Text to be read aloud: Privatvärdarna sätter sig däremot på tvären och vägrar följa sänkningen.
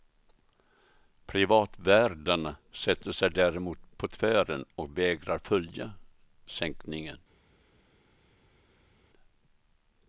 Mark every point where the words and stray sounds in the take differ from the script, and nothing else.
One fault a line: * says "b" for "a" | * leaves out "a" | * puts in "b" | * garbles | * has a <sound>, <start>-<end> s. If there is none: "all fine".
all fine